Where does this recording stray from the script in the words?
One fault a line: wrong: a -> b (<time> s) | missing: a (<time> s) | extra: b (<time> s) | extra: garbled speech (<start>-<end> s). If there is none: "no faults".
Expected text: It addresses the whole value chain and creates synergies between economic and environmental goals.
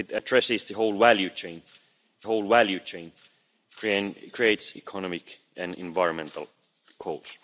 extra: whole value chain (2.2 s)
missing: synergies between (4.8 s)